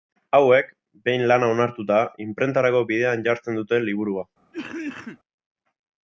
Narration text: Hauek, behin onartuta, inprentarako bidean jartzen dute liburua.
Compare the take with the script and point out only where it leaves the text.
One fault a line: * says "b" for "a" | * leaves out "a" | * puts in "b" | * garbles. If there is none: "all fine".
* puts in "lana"